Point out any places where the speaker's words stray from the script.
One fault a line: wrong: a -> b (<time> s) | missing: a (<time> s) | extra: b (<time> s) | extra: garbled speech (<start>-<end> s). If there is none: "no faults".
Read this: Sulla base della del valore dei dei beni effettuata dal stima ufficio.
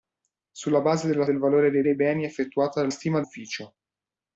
no faults